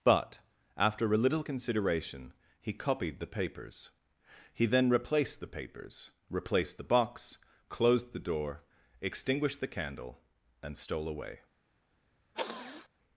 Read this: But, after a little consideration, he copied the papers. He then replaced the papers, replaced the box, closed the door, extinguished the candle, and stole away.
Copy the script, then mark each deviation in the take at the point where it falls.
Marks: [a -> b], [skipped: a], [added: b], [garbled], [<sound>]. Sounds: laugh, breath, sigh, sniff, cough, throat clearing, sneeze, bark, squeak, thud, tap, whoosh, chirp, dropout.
But, after a little consideration, he copied the papers. He then replaced the papers, replaced the box, closed the door, extinguished the candle, and stole away. [sniff]